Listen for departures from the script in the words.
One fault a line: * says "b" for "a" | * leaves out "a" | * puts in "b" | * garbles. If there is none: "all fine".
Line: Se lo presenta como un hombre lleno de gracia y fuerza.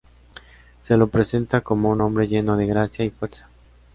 all fine